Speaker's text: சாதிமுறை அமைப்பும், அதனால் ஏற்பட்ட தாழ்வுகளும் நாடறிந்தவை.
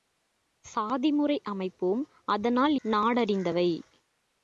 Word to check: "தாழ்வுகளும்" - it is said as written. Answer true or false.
false